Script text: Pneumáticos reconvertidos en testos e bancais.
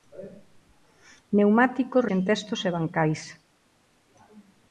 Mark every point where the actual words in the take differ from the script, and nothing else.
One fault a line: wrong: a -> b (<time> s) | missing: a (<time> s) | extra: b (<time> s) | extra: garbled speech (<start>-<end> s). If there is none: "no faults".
missing: reconvertidos (2.1 s)